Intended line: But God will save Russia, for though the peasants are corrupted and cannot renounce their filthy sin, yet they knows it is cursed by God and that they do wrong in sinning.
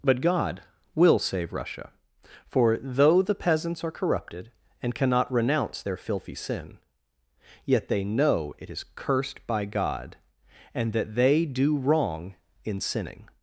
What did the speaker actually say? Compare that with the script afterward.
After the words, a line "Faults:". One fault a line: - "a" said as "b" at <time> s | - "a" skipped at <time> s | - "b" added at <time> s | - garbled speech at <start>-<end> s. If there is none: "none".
But God will save Russia, for though the peasants are corrupted and cannot renounce their filthy sin, yet they know it is cursed by God and that they do wrong in sinning.
Faults:
- "knows" said as "know" at 8.0 s